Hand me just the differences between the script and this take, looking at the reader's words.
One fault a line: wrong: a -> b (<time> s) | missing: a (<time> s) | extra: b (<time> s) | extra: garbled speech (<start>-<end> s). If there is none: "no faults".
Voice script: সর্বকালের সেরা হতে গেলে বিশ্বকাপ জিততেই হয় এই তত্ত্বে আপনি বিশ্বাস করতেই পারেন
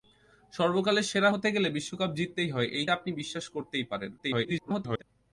missing: তত্ত্বে (2.9 s)
extra: garbled speech (4.2-5.0 s)